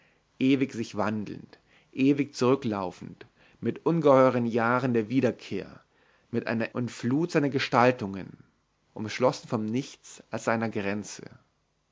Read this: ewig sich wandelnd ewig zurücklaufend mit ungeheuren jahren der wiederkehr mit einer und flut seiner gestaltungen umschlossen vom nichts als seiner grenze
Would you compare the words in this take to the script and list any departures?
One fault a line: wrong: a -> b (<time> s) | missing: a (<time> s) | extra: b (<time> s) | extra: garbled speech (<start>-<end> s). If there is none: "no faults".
no faults